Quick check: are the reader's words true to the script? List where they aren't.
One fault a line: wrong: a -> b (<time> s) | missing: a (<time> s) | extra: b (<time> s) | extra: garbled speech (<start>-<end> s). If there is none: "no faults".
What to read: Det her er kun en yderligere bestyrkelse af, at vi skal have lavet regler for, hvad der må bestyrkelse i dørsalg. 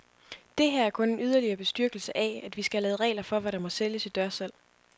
wrong: bestyrkelse -> sælges (3.7 s)